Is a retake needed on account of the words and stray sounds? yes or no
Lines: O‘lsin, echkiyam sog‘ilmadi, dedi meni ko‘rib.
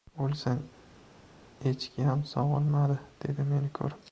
no